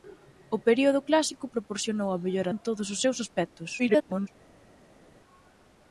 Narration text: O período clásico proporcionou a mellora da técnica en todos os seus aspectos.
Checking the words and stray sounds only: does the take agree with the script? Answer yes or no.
no